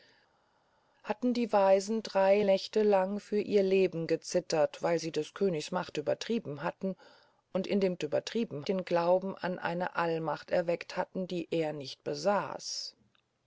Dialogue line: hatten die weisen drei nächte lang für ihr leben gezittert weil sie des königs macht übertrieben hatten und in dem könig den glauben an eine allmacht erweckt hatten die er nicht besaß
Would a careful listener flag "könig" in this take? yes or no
yes